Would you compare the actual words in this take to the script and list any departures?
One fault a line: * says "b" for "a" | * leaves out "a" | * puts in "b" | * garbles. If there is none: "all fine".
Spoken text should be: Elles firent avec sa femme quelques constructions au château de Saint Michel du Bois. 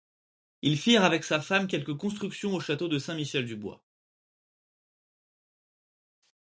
* says "Ils" for "Elles"